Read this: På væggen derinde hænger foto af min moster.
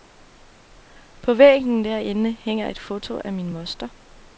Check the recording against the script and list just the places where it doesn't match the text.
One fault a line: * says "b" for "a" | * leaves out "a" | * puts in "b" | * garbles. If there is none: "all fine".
* puts in "et"